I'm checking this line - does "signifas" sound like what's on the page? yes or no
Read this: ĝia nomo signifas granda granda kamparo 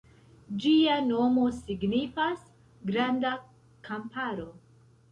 yes